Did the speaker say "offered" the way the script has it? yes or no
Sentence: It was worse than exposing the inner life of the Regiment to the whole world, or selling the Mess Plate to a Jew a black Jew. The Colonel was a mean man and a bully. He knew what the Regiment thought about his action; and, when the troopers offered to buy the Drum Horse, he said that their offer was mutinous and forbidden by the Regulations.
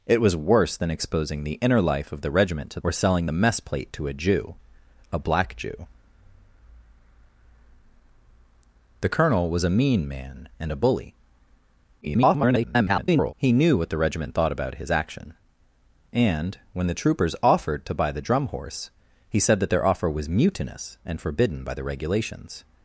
yes